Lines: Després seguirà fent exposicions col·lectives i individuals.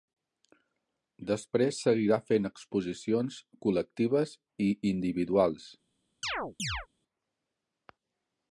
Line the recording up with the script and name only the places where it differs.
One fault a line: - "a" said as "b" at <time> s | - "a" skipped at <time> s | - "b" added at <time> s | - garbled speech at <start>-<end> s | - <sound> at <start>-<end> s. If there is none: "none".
- chirp at 6.2-6.9 s